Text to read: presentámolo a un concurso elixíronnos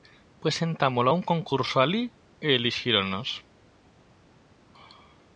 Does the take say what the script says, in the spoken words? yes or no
no